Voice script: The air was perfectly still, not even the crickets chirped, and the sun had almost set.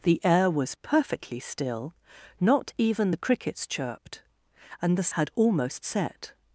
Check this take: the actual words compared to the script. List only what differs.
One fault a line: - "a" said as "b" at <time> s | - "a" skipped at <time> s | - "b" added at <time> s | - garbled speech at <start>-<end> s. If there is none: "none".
- "sun" skipped at 5.1 s